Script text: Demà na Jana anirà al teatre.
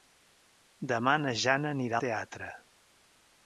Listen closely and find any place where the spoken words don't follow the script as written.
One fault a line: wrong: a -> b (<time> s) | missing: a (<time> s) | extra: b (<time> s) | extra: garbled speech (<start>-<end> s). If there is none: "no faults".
missing: al (2.0 s)